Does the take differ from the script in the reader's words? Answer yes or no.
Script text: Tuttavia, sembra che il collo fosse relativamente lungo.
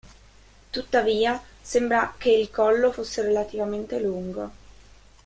no